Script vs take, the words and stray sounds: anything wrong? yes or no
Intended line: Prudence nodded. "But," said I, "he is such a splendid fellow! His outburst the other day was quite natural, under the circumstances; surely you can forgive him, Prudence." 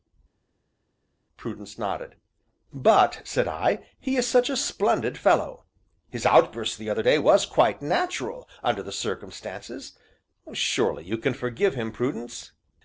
no